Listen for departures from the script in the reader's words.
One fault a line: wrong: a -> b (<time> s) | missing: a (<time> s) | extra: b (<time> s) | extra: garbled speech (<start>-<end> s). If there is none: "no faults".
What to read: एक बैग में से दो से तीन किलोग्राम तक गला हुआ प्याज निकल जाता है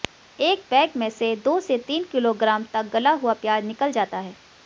no faults